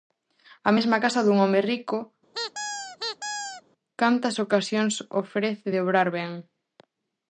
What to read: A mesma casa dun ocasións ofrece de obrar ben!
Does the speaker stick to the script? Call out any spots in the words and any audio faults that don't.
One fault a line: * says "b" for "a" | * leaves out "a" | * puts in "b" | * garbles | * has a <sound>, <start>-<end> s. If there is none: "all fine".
* puts in "home rico cantas"
* has a squeak, 2.3-3.6 s